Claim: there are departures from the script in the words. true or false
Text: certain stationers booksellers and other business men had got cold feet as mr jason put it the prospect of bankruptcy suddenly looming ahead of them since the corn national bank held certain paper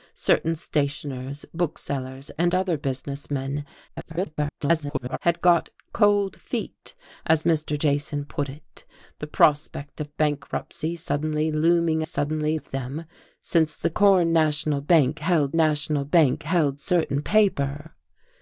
true